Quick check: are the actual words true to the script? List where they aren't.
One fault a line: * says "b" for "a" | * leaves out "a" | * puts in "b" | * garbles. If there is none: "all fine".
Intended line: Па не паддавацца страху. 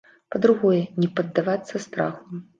* puts in "другое"